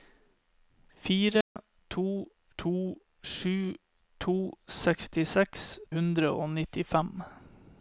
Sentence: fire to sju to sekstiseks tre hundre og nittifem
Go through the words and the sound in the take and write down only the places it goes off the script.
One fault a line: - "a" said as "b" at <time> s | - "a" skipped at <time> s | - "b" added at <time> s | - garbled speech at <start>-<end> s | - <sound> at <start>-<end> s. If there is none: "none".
- dropout at 1.4-1.6 s
- "to" added at 2.6 s
- "tre" skipped at 5.7 s